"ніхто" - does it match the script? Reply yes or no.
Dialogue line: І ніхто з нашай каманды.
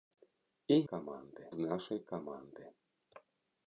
no